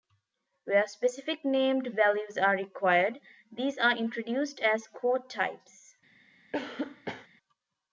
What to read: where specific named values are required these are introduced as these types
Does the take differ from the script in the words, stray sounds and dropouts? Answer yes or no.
yes